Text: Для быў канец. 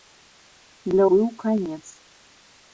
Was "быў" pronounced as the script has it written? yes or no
yes